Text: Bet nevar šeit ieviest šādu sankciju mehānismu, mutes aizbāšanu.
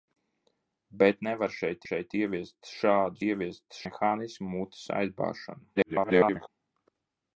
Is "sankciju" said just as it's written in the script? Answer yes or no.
no